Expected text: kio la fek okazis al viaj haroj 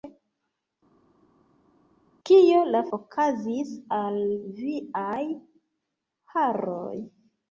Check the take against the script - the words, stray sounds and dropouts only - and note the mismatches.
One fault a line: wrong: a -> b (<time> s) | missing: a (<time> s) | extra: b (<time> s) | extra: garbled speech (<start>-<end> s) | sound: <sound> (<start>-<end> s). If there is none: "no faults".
missing: fek (2.8 s)